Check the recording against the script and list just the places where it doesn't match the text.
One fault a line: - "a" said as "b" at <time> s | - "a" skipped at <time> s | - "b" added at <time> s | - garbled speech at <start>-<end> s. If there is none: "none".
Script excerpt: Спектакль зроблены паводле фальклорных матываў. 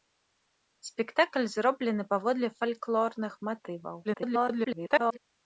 - garbled speech at 4.0-5.2 s